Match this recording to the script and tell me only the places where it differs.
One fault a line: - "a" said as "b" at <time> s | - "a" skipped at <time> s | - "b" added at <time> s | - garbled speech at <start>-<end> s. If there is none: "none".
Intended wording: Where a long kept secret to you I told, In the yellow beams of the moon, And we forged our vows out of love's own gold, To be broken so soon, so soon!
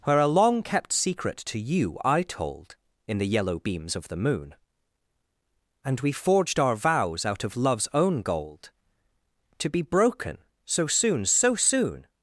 none